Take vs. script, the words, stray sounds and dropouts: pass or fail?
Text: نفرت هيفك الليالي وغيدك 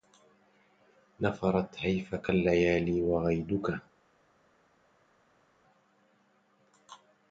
pass